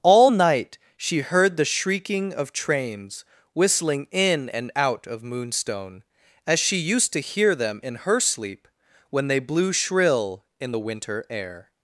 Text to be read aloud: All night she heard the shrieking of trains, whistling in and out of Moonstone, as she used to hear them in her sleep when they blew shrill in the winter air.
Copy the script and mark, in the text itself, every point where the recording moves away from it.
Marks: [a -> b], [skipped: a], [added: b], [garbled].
All night she heard the shrieking of trains, whistling in and out of Moonstone, as she used to hear them in her sleep when they blew shrill in the winter air.